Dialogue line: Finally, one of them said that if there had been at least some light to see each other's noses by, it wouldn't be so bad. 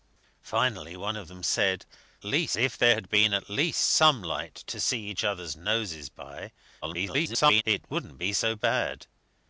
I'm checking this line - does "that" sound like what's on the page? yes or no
no